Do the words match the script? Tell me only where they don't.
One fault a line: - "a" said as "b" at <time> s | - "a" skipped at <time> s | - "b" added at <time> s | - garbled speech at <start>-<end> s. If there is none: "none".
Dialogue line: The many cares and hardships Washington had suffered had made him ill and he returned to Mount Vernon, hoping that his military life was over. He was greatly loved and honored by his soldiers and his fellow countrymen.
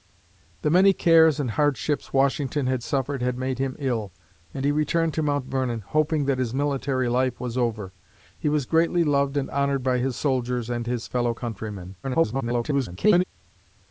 - garbled speech at 12.0-13.2 s